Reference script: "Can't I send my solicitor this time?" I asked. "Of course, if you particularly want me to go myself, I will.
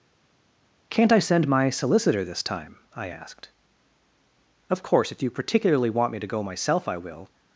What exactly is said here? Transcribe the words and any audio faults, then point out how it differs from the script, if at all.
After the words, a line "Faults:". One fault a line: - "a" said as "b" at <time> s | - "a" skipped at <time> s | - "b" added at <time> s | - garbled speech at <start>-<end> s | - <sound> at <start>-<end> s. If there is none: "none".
"Can't I send my solicitor this time?" I asked. "Of course, if you particularly want me to go myself, I will.
Faults:
none